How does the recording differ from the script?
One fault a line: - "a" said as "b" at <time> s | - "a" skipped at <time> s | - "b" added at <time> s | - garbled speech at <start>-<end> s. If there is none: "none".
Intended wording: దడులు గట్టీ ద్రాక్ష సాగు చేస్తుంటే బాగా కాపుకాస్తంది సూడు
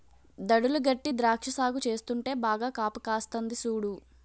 none